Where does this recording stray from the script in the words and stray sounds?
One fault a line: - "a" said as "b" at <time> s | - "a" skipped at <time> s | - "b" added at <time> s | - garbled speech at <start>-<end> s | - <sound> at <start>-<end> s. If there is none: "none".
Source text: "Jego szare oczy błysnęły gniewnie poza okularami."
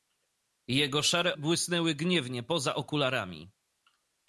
- "oczy" skipped at 1.4 s